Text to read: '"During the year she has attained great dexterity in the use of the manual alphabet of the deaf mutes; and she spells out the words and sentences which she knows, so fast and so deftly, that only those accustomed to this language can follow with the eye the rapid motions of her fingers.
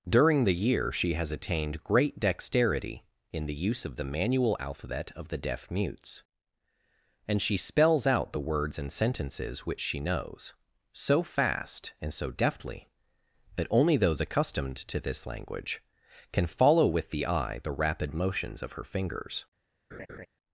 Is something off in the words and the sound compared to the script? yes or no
yes